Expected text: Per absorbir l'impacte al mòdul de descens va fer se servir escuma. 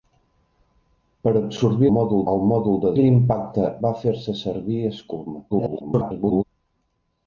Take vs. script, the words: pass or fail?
fail